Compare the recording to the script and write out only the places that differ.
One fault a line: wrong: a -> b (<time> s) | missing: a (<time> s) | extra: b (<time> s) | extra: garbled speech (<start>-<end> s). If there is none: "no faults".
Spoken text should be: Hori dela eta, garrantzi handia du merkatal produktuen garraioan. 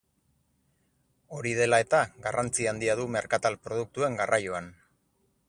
no faults